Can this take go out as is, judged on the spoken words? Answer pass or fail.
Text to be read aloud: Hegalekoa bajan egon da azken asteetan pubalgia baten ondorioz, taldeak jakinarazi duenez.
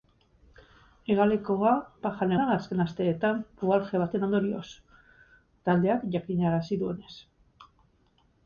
fail